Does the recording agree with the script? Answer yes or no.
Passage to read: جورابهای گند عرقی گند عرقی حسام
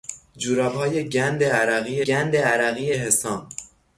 yes